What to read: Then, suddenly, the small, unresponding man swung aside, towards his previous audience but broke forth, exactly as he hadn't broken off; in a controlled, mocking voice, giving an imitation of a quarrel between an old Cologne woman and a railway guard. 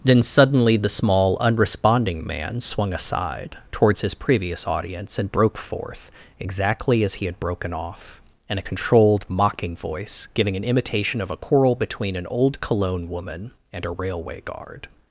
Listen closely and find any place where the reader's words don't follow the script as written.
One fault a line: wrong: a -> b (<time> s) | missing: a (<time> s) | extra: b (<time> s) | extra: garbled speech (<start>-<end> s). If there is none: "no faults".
wrong: but -> and (5.2 s)
wrong: hadn't -> had (7.3 s)